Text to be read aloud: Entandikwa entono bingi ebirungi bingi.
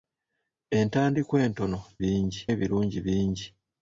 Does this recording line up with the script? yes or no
yes